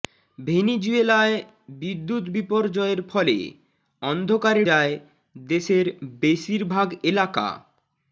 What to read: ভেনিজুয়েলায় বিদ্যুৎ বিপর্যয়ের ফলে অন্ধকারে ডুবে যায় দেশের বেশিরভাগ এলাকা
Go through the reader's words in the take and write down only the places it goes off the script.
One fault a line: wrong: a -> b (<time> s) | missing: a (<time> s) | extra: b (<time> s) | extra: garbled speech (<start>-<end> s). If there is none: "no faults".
missing: ডুবে (4.6 s)